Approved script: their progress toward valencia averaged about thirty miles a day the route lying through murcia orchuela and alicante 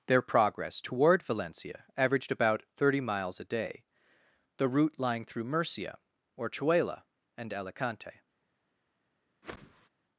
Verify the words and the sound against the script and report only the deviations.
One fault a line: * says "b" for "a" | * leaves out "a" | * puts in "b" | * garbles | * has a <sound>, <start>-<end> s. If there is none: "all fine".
* has a whoosh, 9.4-9.9 s